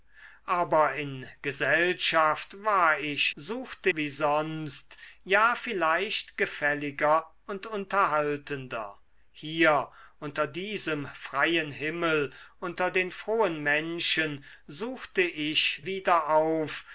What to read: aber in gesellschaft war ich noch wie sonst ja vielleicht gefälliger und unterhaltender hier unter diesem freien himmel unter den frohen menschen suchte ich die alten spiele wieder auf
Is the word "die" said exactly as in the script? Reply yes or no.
no